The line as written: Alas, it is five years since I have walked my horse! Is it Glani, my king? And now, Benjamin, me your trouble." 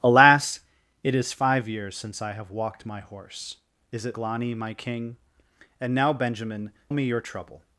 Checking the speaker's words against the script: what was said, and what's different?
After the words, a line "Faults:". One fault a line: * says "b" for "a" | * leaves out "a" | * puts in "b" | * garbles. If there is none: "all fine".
Alas, it is five years since I have walked my horse! Is it Glani, my king? And now, Benjamin, me your trouble."
Faults:
all fine